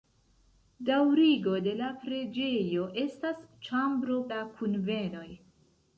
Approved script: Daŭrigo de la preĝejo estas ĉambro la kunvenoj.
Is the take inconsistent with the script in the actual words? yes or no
no